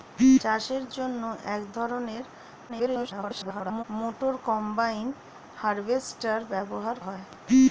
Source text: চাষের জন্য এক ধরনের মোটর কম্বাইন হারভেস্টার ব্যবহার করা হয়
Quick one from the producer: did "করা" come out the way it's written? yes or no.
no